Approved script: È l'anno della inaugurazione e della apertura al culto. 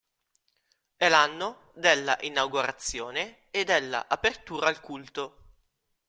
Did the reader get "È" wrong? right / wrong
right